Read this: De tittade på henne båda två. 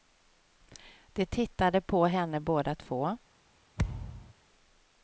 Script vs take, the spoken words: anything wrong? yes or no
no